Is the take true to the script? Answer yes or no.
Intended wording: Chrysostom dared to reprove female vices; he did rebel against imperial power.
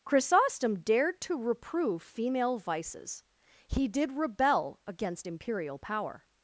yes